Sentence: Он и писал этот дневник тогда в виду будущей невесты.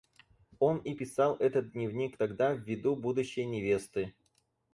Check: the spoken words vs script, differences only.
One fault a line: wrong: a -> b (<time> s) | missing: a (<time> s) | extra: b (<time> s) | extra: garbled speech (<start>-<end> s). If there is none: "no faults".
no faults